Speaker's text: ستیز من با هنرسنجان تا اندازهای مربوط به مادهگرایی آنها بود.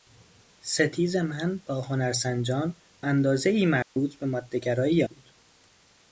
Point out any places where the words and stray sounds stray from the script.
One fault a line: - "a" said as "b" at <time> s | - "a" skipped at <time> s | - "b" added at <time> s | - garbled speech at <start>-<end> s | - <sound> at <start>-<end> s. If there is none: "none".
- "تا" skipped at 2.8 s
- dropout at 3.8-4.0 s
- "آنها" skipped at 5.0 s